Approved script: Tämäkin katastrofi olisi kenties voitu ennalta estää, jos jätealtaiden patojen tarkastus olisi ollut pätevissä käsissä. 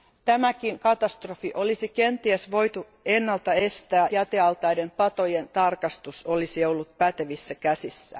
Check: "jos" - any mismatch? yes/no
yes